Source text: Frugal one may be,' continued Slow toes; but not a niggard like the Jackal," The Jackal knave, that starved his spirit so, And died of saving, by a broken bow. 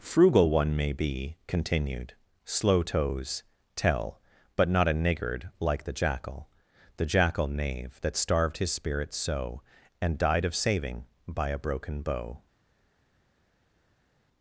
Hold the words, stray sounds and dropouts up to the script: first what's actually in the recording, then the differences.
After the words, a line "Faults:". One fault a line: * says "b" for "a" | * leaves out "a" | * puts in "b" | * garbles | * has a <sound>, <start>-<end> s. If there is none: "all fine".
Frugal one may be,' continued Slow toes; tell but not a niggard like the Jackal," The Jackal knave, that starved his spirit so, And died of saving, by a broken bow.
Faults:
* puts in "tell"